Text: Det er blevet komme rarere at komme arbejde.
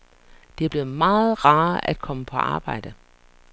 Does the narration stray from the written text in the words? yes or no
yes